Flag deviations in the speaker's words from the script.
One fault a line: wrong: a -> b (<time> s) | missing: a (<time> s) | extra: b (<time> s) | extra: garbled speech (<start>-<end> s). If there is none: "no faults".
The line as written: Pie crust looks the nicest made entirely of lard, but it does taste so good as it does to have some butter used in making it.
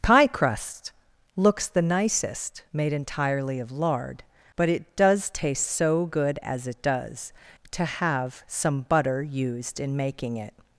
no faults